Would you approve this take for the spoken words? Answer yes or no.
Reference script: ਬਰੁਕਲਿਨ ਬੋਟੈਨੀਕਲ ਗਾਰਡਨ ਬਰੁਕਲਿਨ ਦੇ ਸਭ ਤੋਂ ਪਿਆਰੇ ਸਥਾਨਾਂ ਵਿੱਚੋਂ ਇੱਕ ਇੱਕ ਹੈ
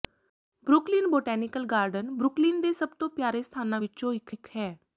yes